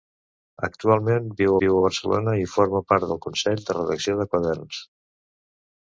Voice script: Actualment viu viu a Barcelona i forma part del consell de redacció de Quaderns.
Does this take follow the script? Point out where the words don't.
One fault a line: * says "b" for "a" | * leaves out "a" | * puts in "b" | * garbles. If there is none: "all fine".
all fine